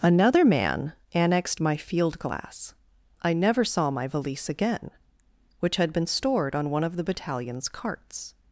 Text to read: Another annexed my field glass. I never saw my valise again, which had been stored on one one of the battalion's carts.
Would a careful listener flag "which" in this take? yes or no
no